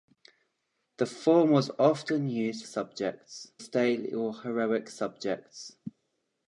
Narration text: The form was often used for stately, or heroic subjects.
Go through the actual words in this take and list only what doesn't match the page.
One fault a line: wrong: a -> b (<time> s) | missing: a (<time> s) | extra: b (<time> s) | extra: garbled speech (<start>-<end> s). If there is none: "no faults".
wrong: for -> subjects (2.6 s)